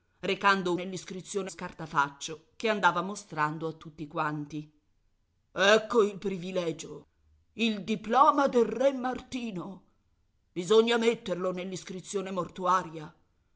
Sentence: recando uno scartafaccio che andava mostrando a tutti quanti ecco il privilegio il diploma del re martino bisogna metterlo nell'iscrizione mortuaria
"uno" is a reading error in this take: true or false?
true